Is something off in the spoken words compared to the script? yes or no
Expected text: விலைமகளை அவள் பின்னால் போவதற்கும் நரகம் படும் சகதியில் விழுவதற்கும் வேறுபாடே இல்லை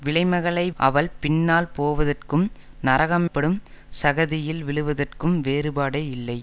no